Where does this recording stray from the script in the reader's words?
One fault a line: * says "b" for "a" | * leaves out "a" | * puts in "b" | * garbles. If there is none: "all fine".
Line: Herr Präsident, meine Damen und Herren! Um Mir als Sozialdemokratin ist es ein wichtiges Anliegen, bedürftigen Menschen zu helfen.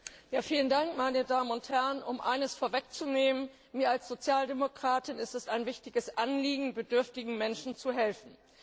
* puts in "eines vorwegzunehmen"